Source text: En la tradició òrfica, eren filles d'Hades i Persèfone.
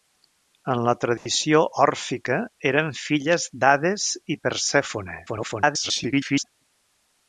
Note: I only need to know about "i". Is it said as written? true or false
true